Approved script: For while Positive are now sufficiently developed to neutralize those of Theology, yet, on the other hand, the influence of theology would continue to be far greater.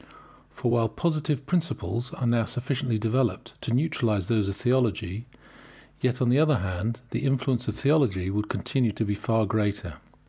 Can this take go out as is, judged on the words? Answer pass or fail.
fail